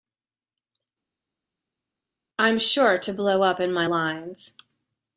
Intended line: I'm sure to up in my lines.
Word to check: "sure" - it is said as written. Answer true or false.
true